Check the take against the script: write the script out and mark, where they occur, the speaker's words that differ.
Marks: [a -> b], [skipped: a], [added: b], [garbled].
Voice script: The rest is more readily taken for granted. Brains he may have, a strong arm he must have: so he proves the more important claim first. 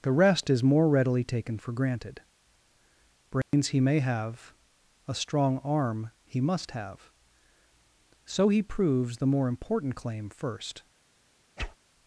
The rest is more readily taken for granted. Brains he may have, a strong arm he must have: so he proves the more important claim first.